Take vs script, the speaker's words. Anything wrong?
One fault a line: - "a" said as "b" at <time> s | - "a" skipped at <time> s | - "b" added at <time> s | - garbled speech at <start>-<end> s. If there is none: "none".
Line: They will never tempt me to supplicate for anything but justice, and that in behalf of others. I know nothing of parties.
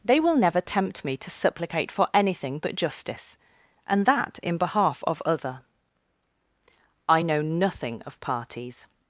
- "others" said as "other" at 5.2 s